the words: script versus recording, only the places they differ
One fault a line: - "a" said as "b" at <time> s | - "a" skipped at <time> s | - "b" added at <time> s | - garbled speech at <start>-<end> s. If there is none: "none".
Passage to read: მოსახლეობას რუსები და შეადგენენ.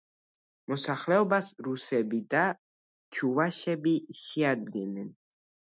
- "ჩუვაშები" added at 3.2 s